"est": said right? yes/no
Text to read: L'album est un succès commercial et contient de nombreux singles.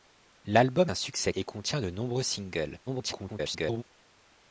no